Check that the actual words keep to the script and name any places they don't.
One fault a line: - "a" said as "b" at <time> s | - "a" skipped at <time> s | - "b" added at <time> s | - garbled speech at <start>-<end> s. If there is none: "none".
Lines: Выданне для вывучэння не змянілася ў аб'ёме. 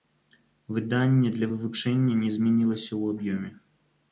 none